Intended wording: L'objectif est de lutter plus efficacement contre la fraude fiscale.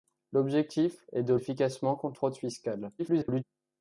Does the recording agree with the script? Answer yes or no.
no